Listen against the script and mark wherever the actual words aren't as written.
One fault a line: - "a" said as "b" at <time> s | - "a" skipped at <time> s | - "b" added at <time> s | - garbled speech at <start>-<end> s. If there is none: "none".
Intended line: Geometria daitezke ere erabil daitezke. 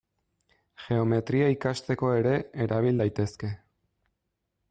- "daitezke" said as "ikasteko" at 1.6 s